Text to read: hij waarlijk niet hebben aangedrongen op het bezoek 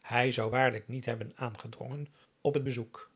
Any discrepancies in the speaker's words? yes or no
yes